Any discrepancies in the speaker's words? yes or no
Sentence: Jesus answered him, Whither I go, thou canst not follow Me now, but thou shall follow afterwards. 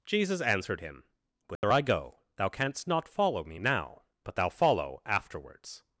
yes